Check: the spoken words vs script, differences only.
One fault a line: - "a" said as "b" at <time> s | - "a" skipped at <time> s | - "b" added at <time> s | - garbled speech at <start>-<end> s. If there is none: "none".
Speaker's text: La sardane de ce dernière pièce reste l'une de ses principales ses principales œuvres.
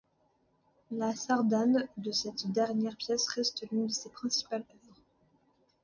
- "ce" said as "cette" at 2.1 s
- "ses principales" skipped at 4.6 s